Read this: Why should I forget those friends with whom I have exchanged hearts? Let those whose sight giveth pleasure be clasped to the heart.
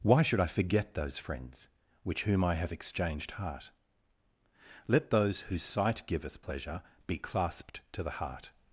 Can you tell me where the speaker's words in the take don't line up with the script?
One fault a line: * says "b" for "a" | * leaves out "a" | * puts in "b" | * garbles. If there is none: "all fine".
* says "which" for "with"
* says "heart" for "hearts"